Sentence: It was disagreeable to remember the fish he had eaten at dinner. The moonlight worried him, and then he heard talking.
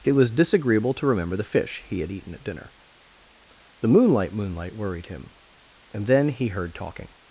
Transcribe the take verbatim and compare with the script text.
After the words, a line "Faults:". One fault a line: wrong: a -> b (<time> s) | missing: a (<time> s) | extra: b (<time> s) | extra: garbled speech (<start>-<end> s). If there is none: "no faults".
It was disagreeable to remember the fish he had eaten at dinner. The moonlight moonlight worried him, and then he heard talking.
Faults:
extra: moonlight (4.3 s)